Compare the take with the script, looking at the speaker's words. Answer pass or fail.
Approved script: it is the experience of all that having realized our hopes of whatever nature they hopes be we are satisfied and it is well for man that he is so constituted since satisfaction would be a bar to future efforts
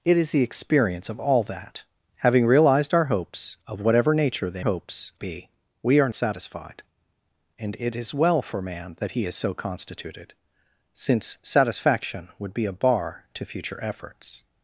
pass